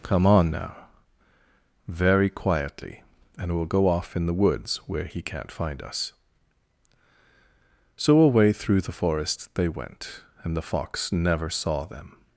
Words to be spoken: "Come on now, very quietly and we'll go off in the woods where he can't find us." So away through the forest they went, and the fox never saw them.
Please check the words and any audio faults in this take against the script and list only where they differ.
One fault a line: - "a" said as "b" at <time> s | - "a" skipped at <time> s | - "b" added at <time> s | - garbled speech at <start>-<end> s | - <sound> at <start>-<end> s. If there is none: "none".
none